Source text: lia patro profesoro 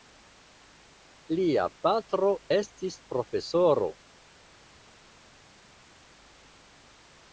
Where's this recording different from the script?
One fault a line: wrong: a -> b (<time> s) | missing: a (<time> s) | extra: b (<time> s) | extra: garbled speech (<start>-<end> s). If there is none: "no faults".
extra: estis (2.6 s)